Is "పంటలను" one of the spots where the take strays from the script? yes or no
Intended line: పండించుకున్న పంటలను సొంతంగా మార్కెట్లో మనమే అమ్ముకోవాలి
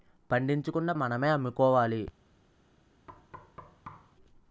yes